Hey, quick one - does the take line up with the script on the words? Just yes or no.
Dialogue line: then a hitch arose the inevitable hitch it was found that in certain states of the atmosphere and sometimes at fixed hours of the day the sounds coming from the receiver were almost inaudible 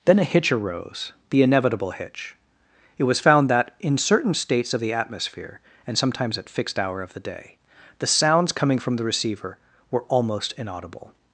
no